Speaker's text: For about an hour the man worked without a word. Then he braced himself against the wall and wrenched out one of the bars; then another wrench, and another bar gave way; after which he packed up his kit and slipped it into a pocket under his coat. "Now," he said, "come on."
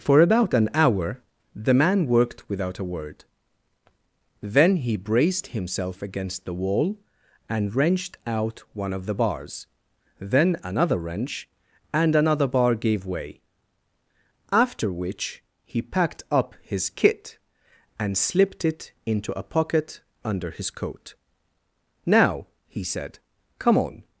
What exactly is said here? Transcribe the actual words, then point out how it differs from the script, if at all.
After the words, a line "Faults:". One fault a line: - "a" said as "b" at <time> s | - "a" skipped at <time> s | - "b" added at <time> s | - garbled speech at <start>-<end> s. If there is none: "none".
For about an hour the man worked without a word. Then he braced himself against the wall and wrenched out one of the bars; then another wrench, and another bar gave way; after which he packed up his kit and slipped it into a pocket under his coat. "Now," he said, "come on."
Faults:
none